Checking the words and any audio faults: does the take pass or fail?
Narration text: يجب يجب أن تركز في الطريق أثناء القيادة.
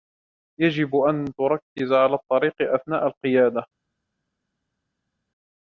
fail